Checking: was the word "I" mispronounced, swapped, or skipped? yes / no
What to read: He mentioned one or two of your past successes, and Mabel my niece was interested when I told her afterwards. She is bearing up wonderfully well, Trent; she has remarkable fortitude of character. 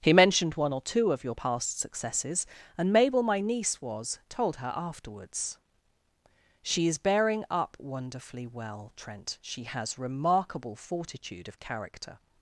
yes